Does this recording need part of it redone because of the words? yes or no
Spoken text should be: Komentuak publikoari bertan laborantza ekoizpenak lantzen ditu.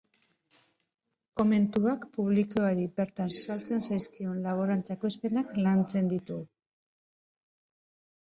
yes